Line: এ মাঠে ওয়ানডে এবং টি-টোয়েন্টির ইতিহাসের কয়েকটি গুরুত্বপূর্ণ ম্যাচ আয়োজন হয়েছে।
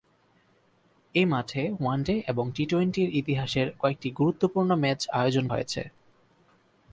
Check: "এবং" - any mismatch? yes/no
no